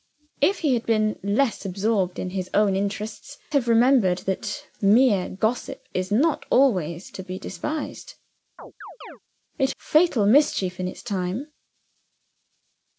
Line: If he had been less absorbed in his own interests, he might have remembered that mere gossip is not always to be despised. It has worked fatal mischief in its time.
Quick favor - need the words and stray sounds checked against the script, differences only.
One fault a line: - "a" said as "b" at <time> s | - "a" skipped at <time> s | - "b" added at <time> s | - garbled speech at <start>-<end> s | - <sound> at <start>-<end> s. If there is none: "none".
- "he might" skipped at 3.4 s
- chirp at 8.6-9.2 s
- "has worked" skipped at 9.7 s